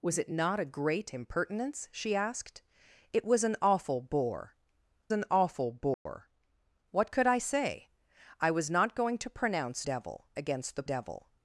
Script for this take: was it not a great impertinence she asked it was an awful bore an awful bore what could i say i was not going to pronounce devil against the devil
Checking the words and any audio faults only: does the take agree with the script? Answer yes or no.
no